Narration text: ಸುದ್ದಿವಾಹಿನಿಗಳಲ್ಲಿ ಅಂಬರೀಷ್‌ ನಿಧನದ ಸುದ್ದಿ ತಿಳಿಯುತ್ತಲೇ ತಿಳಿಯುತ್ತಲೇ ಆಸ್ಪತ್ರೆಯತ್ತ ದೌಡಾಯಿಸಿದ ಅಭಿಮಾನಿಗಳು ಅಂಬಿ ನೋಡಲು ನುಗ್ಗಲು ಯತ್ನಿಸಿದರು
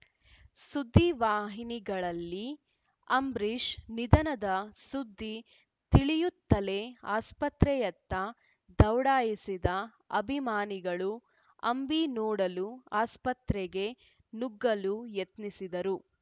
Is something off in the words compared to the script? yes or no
yes